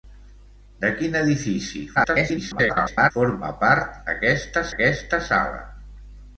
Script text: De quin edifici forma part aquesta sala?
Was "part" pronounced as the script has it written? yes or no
yes